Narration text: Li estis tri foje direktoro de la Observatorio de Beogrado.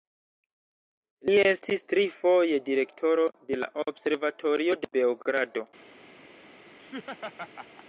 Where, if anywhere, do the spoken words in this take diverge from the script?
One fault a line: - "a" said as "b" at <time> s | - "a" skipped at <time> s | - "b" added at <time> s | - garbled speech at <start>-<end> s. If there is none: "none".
none